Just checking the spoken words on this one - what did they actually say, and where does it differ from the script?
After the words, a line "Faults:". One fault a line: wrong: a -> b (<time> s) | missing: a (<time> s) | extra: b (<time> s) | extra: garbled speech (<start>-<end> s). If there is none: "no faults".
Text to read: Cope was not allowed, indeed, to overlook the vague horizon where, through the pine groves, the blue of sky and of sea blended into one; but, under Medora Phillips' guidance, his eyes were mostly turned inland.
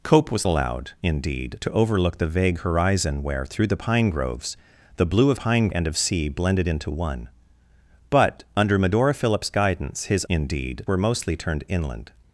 Cope was allowed, indeed, to overlook the vague horizon where, through the pine groves, the blue of pine and of sea blended into one; but, under Medora Phillips' guidance, his indeed were mostly turned inland.
Faults:
missing: not (0.5 s)
wrong: sky -> pine (5.3 s)
wrong: eyes -> indeed (10.3 s)